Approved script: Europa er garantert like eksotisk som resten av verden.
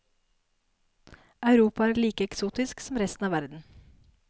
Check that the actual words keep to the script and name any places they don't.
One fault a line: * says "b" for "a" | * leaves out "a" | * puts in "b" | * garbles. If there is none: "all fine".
* leaves out "garantert"